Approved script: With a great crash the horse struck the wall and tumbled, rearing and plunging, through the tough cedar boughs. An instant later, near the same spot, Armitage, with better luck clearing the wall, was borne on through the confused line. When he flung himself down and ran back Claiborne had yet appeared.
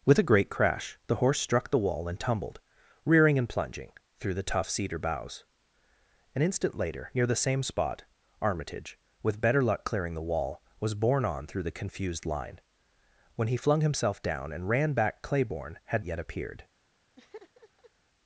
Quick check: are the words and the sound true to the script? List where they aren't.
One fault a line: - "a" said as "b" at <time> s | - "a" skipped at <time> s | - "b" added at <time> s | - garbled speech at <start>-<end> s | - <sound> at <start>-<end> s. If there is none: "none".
- laugh at 17.2-17.9 s